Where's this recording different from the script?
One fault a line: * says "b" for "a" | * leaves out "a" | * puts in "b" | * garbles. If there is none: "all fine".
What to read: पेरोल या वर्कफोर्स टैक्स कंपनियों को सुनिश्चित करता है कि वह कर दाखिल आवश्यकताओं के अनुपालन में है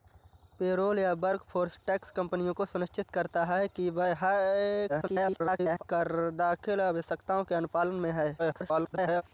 * garbles
* garbles